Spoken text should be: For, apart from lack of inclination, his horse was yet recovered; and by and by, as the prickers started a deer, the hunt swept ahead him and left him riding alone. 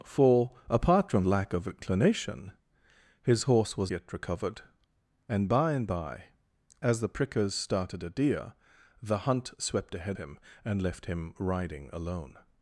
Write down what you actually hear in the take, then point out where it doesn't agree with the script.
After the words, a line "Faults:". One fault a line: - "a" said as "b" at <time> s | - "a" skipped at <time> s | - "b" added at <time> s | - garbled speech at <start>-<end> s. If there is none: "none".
For, apart from lack of inclination, his horse was yet recovered; and by and by, as the prickers started a deer, the hunt swept ahead him and left him riding alone.
Faults:
none